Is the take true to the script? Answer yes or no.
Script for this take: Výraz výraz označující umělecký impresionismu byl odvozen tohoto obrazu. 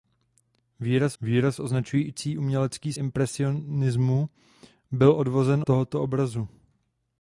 yes